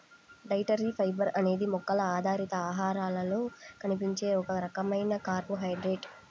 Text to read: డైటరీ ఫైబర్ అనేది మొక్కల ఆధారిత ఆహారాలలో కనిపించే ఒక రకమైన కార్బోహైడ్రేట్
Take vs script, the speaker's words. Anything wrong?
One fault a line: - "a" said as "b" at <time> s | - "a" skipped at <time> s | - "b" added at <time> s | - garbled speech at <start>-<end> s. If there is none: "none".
none